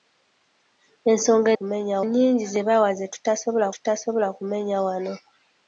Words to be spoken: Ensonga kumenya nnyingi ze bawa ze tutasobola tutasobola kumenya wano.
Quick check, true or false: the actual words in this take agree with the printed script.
true